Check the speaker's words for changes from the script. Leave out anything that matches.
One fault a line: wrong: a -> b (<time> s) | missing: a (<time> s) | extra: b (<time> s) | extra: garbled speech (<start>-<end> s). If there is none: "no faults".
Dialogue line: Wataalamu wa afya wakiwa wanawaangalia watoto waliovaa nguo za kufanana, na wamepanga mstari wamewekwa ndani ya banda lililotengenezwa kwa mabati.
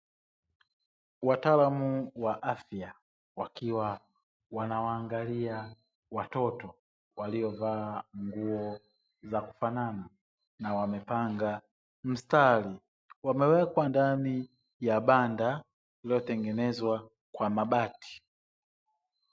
no faults